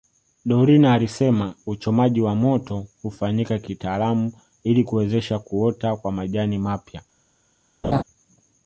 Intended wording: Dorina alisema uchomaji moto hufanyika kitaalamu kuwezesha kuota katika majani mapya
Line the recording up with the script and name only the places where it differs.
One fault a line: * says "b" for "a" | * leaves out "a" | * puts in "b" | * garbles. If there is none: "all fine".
* puts in "wa"
* puts in "ili"
* says "kwa" for "katika"